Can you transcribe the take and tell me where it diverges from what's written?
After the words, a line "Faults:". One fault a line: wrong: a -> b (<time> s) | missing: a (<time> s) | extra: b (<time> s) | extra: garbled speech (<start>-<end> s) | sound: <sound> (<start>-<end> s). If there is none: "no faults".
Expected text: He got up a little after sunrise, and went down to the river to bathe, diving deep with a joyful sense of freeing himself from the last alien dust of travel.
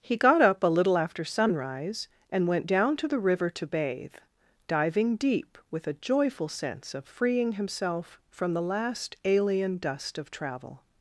He got up a little after sunrise, and went down to the river to bathe, diving deep with a joyful sense of freeing himself from the last alien dust of travel.
Faults:
no faults